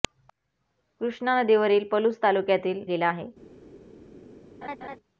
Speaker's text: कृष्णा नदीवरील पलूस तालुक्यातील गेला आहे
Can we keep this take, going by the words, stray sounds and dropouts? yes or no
no